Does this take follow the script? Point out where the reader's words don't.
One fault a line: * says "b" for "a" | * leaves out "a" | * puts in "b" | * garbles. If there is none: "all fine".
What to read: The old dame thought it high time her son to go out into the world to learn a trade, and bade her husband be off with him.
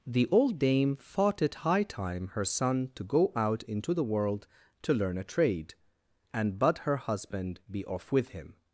all fine